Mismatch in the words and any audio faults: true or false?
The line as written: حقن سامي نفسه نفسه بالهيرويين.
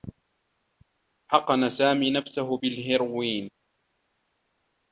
true